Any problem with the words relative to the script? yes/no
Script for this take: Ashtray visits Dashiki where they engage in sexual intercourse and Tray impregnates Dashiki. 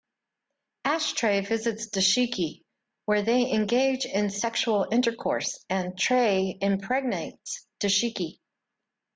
no